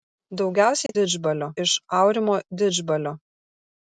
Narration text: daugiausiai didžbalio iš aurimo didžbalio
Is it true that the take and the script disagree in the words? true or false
false